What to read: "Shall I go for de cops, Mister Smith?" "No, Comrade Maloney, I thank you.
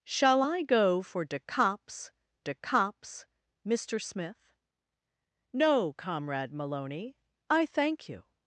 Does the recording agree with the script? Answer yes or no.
no